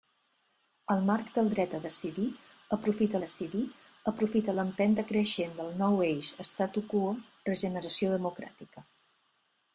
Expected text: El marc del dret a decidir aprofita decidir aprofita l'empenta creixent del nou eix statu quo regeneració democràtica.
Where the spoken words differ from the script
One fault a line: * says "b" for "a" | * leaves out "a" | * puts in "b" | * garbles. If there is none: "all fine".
all fine